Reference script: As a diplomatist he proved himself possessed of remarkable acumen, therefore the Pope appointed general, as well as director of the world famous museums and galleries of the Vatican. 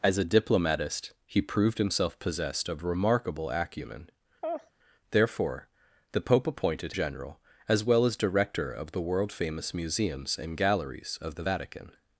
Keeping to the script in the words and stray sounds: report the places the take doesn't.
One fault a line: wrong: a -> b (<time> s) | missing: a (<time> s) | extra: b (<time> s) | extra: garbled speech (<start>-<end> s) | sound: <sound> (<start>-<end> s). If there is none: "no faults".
sound: laugh (4.4-4.7 s)